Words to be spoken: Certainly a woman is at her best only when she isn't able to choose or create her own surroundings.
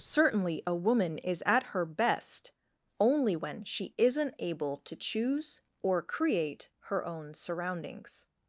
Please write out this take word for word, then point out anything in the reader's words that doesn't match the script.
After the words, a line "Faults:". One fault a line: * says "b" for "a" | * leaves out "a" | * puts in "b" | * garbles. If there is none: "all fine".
Certainly a woman is at her best only when she isn't able to choose or create her own surroundings.
Faults:
all fine